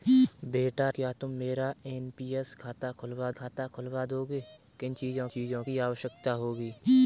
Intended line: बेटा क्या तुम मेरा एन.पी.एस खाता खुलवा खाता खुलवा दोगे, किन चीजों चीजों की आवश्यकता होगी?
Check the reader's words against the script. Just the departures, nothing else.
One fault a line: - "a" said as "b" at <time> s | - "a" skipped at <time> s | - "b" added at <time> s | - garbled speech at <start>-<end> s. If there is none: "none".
none